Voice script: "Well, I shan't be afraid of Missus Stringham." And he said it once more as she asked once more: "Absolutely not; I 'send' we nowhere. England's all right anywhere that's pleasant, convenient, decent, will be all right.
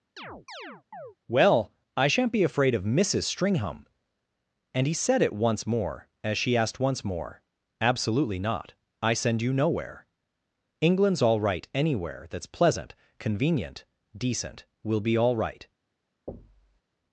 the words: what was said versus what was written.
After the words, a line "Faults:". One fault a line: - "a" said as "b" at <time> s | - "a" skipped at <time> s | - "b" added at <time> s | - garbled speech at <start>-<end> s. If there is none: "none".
"Well, I shan't be afraid of Missus Stringham." And he said it once more as she asked once more: "Absolutely not; I 'send' you nowhere. England's all right anywhere that's pleasant, convenient, decent, will be all right.
Faults:
- "we" said as "you" at 9.4 s